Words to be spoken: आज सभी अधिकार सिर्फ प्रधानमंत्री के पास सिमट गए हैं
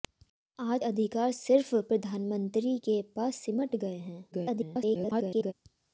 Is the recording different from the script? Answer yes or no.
yes